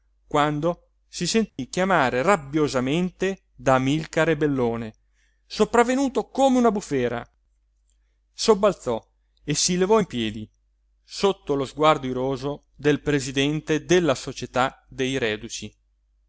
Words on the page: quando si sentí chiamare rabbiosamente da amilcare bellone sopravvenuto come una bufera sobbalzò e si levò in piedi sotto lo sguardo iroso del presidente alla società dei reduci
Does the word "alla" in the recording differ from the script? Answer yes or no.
yes